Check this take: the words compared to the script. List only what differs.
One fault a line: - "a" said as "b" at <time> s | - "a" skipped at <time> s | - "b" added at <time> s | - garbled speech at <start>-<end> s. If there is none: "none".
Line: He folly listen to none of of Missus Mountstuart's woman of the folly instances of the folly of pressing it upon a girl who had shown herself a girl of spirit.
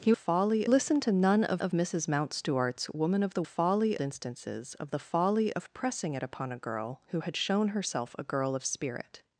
none